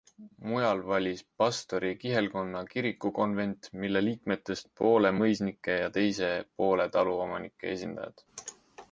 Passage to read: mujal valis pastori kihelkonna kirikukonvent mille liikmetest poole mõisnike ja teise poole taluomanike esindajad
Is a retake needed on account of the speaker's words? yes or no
no